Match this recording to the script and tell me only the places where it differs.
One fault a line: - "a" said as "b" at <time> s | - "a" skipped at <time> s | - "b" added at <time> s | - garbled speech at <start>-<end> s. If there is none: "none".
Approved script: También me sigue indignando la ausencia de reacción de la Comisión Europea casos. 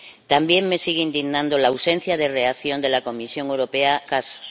none